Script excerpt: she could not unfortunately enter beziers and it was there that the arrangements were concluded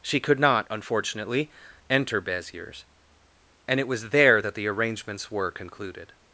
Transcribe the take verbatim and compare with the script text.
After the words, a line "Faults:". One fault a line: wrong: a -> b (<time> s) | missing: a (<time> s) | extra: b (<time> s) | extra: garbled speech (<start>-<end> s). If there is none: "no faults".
she could not unfortunately enter beziers and it was there that the arrangements were concluded
Faults:
no faults